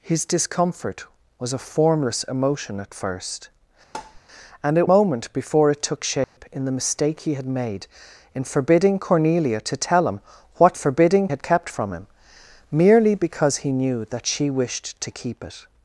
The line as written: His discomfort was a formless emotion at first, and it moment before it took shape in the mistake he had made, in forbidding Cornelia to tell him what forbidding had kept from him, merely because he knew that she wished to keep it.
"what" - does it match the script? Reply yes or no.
yes